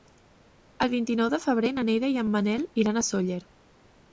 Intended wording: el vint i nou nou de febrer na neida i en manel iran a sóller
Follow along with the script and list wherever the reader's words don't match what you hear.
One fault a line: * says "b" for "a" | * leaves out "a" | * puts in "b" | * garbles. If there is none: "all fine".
* leaves out "nou"